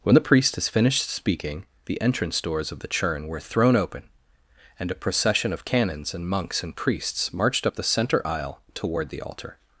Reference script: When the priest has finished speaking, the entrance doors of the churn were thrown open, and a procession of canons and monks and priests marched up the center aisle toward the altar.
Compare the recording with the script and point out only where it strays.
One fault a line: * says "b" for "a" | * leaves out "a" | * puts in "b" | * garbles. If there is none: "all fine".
all fine